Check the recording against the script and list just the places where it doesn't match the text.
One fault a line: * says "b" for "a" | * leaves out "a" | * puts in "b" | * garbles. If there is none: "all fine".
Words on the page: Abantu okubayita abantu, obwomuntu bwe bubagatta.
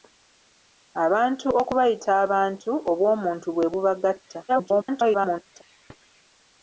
* garbles